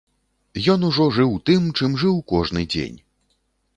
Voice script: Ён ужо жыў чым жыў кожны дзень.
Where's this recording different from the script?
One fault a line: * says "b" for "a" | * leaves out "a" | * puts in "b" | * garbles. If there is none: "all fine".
* puts in "тым"